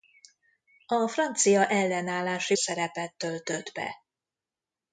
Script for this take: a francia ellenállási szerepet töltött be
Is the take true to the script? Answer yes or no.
yes